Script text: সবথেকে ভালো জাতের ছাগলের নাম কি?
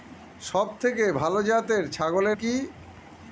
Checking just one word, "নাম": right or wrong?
wrong